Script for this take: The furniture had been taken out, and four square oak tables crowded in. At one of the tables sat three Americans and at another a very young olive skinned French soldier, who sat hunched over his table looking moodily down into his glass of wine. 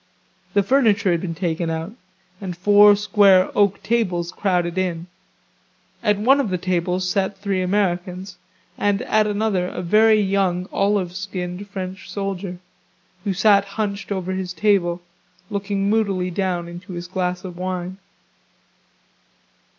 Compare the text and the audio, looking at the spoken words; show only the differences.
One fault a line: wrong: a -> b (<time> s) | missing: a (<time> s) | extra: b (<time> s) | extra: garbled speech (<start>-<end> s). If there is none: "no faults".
no faults